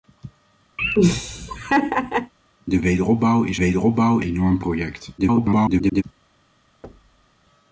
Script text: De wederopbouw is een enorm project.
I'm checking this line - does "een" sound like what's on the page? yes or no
no